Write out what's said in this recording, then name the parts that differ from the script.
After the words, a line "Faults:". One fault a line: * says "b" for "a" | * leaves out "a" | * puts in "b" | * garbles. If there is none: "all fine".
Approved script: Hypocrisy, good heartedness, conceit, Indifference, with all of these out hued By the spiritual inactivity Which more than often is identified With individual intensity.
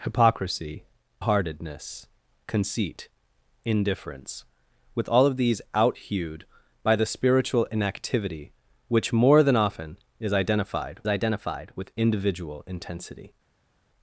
Hypocrisy, heartedness, conceit, Indifference, with all of these out hued By the spiritual inactivity Which more than often is identified identified With individual intensity.
Faults:
* leaves out "good"
* puts in "identified"